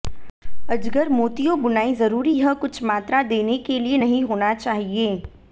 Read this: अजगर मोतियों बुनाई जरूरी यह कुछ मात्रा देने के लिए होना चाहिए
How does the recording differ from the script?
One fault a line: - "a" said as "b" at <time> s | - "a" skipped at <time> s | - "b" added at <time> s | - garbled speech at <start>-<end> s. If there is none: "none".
- "नहीं" added at 4.0 s